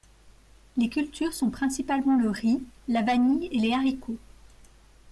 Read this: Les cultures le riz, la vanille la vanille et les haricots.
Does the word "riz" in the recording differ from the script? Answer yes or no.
no